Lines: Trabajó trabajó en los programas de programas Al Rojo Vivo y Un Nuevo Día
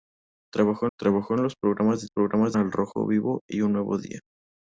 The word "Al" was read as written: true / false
true